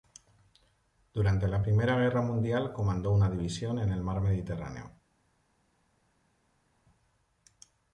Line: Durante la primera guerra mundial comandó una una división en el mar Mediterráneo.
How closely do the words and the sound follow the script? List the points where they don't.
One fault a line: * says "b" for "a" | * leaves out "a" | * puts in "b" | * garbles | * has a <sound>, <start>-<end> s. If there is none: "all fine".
* leaves out "una"